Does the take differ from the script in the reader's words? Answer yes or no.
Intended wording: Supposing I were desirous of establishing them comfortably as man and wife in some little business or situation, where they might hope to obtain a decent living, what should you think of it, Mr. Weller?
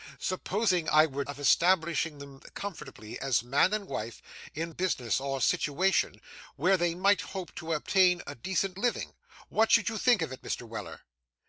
yes